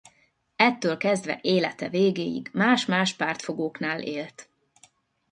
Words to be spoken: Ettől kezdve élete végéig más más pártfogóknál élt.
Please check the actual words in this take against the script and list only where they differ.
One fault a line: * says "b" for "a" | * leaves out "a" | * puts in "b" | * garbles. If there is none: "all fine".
all fine